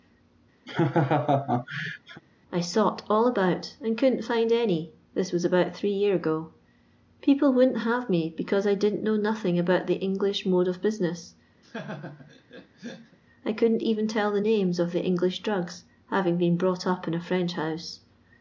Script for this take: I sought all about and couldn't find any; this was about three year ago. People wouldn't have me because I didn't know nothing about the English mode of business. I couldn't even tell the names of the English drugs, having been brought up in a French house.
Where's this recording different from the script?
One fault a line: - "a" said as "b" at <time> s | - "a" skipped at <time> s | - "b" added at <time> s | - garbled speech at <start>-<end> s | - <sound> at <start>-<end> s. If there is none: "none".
- laugh at 0.7-2.2 s
- laugh at 11.6-13.2 s